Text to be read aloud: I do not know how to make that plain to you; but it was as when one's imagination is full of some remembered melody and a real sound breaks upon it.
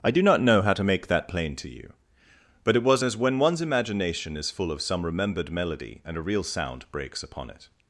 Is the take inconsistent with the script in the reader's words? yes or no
no